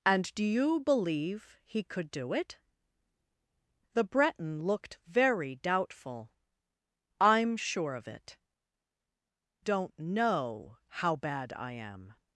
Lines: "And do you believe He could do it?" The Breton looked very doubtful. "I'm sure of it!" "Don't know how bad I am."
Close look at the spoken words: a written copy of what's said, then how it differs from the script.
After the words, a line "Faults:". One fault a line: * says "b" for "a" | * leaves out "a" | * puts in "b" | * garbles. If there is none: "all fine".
"And do you believe He could do it?" The Breton looked very doubtful. "I'm sure of it!" "Don't know how bad I am."
Faults:
all fine